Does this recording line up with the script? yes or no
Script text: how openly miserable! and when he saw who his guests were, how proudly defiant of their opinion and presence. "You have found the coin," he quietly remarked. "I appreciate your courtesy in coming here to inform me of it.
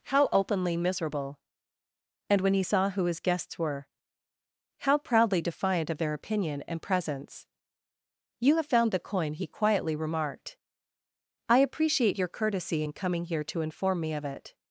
yes